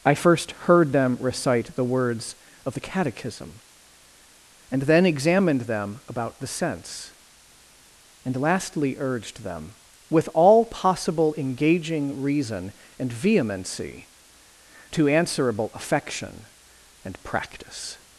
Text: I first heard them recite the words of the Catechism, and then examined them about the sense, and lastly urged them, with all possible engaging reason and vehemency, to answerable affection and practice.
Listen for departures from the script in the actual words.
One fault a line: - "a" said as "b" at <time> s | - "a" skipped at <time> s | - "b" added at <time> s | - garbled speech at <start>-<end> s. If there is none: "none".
none